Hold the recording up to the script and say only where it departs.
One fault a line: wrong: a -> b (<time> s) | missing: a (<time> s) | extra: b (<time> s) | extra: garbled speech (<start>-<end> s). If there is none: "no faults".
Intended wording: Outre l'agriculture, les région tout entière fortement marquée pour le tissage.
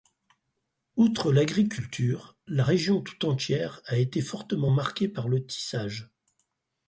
wrong: les -> la (2.5 s)
extra: a été (3.8 s)
wrong: pour -> par (5.1 s)